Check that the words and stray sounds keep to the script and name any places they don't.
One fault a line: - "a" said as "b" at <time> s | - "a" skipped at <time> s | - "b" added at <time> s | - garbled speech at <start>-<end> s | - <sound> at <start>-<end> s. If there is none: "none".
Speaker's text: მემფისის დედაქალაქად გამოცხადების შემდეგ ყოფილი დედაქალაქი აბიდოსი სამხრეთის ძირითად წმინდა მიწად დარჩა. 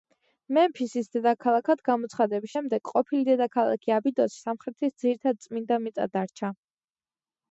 none